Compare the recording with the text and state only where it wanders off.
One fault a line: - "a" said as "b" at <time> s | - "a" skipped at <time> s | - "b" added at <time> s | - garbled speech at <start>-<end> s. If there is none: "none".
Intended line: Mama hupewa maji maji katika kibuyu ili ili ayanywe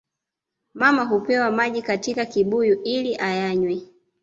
- "maji" skipped at 1.8 s
- "ili" skipped at 3.1 s